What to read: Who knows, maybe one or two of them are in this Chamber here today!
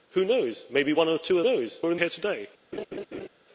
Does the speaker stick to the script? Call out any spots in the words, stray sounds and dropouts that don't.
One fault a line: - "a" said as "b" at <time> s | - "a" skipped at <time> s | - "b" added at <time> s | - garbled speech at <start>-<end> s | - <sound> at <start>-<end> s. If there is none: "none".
- "them" said as "knows" at 1.4 s
- "this Chamber" skipped at 2.0 s
- laugh at 2.7-3.3 s